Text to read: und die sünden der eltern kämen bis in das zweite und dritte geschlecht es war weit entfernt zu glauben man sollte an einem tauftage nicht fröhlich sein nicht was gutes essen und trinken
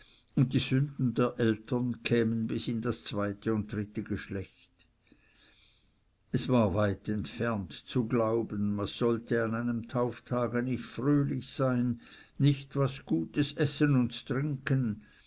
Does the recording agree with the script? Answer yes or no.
yes